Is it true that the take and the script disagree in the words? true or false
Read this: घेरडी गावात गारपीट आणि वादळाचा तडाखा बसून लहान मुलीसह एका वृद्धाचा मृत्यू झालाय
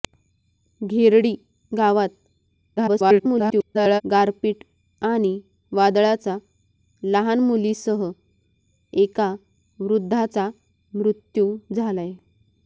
true